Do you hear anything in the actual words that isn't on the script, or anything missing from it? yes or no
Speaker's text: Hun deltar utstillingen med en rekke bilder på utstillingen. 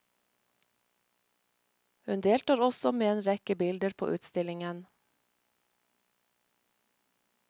yes